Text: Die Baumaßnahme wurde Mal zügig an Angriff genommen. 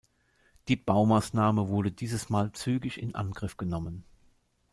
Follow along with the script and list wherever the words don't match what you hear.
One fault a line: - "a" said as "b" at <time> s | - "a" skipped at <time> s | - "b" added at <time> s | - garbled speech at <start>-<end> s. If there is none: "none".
- "dieses" added at 1.9 s
- "an" said as "in" at 3.0 s